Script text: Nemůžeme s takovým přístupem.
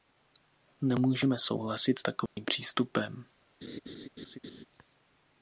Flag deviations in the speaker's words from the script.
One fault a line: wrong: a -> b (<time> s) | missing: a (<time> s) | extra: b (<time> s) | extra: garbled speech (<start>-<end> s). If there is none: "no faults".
extra: souhlasit (1.4 s)